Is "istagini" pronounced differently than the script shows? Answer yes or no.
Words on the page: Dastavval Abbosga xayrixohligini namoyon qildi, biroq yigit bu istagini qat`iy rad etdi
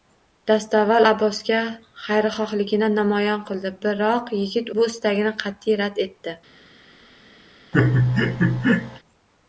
no